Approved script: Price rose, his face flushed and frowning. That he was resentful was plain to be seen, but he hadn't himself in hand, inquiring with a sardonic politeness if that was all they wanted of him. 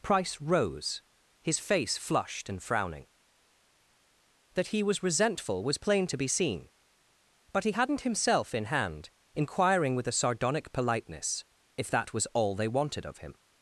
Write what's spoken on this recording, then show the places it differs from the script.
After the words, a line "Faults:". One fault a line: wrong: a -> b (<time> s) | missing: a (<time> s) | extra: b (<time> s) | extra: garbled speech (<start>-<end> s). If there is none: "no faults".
Price rose, his face flushed and frowning. That he was resentful was plain to be seen, but he hadn't himself in hand, inquiring with a sardonic politeness if that was all they wanted of him.
Faults:
no faults